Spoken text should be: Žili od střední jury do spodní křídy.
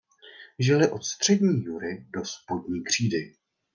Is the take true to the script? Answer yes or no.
yes